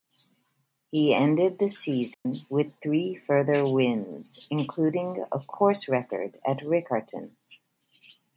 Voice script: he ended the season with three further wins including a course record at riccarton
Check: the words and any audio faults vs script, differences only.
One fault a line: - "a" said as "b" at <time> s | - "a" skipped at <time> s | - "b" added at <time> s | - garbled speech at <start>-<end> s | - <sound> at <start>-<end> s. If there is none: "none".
- dropout at 2.1-2.3 s